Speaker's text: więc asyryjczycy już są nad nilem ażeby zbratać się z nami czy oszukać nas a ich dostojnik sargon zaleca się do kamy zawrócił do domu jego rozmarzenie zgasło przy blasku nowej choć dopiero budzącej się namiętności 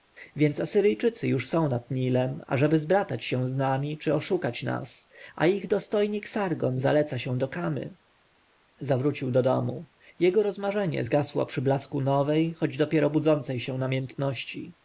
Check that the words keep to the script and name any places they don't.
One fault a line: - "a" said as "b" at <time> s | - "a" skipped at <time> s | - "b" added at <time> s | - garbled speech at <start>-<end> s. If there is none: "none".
none